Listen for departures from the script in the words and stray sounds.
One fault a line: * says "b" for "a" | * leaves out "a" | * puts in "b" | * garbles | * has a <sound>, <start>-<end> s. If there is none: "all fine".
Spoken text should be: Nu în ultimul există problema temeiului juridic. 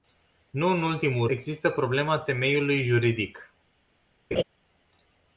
* has a laugh, 4.3-4.4 s